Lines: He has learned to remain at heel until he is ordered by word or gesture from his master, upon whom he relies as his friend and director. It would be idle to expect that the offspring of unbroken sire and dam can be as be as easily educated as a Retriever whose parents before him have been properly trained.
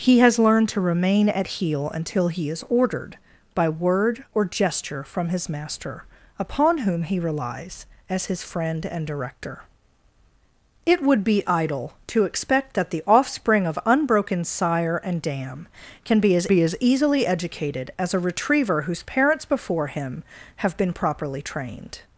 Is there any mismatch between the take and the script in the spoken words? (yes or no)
no